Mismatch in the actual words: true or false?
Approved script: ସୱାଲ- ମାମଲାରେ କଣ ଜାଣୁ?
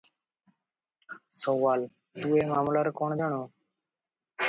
true